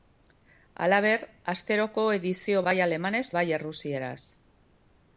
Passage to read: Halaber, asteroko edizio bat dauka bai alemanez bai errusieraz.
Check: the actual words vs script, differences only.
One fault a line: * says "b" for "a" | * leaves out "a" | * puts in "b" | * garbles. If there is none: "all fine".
* leaves out "bat dauka"